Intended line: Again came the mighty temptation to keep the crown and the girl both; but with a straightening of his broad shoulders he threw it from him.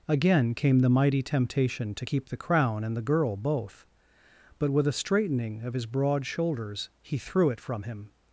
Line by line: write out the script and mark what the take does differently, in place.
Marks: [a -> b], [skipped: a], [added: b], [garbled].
Again came the mighty temptation to keep the crown and the girl both; but with a straightening of his broad shoulders he threw it from him.